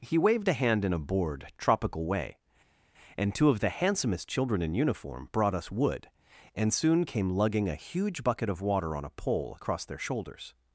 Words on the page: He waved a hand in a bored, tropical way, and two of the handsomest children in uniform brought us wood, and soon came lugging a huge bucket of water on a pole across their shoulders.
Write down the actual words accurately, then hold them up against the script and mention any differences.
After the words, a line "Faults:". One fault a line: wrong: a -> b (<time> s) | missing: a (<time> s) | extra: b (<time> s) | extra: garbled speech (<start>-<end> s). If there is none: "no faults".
He waved a hand in a bored, tropical way, and two of the handsomest children in uniform brought us wood, and soon came lugging a huge bucket of water on a pole across their shoulders.
Faults:
no faults